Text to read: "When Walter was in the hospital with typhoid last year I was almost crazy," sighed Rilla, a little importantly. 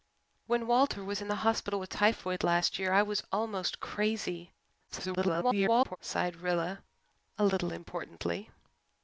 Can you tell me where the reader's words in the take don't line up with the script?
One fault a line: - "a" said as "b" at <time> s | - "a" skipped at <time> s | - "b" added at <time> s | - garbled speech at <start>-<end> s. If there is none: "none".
- garbled speech at 4.9-6.0 s